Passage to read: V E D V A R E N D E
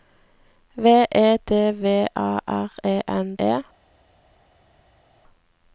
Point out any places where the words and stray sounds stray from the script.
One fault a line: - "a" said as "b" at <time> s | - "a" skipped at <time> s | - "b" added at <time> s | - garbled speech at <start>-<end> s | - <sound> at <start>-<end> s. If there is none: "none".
- "D" skipped at 3.4 s